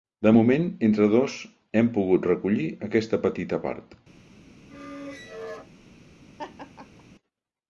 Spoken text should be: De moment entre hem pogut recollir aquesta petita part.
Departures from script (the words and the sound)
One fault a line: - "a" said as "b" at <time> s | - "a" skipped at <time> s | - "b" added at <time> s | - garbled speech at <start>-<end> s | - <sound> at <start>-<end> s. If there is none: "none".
- "dos" added at 1.1 s
- squeak at 4.7-5.7 s
- laugh at 6.4-7.0 s